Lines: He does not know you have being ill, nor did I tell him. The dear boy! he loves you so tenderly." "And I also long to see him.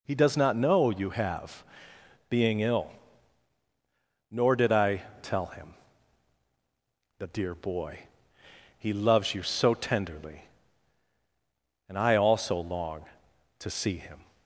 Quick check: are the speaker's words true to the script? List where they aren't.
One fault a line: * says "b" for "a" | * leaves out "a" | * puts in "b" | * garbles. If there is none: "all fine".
all fine